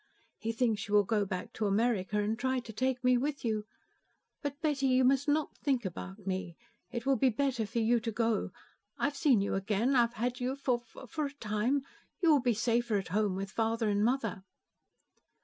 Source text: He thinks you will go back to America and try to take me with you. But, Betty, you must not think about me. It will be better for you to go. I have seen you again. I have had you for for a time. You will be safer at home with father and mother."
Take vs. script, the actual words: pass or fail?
pass